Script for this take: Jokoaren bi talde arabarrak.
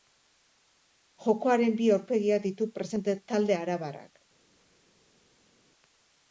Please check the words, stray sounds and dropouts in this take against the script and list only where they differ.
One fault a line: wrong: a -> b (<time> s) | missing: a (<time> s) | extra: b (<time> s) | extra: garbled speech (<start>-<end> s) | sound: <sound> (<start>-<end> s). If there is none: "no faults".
extra: aurpegiak ditu presente (2.0 s)